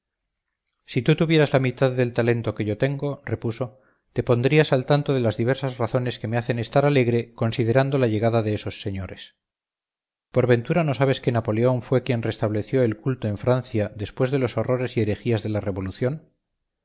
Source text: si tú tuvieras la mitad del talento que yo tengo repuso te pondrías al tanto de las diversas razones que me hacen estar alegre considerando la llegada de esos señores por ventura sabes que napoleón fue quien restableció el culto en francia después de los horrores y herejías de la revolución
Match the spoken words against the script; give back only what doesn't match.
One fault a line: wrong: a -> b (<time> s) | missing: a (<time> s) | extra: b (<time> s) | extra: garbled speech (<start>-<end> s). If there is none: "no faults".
extra: no (10.8 s)